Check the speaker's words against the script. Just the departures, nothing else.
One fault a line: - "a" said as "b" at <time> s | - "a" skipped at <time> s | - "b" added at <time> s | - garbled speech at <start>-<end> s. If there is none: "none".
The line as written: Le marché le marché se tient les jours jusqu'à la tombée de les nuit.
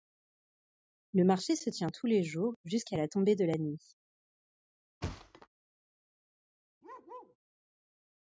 - "le marché" skipped at 1.6 s
- "tous" added at 1.9 s
- "les" said as "la" at 3.4 s